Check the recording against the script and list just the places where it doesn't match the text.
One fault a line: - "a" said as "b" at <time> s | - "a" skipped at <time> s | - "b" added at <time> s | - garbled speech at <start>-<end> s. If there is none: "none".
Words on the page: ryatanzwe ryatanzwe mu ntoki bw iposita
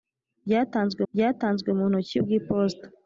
none